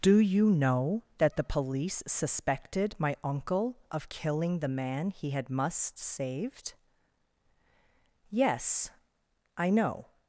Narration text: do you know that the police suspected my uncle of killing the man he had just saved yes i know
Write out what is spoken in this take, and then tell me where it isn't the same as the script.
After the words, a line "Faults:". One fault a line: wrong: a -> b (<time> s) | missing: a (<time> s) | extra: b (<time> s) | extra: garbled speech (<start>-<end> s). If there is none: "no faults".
do you know that the police suspected my uncle of killing the man he had must saved yes i know
Faults:
wrong: just -> must (5.5 s)